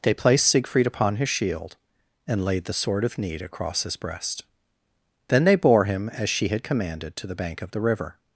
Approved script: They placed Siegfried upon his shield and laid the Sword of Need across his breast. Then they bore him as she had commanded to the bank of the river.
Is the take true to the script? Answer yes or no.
yes